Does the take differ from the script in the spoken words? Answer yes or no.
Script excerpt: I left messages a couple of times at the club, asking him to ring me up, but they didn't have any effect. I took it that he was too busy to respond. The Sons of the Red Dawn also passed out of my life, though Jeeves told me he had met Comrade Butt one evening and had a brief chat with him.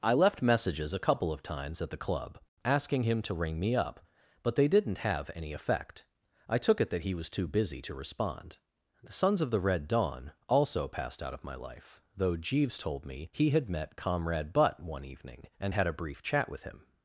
no